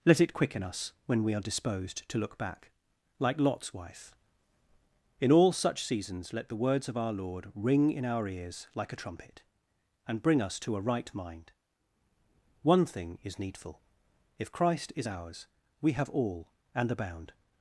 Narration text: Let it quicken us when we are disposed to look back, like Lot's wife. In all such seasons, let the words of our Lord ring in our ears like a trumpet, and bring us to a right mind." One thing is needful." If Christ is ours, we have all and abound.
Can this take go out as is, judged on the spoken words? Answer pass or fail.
pass